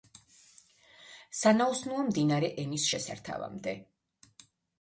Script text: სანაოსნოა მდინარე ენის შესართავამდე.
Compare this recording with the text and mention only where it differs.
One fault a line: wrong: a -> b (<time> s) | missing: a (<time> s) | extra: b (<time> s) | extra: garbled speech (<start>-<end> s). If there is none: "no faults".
no faults